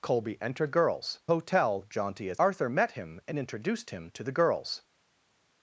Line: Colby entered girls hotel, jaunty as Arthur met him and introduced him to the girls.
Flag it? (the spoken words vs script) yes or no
no